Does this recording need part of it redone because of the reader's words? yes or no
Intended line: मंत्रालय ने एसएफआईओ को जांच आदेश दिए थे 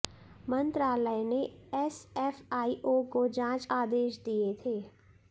no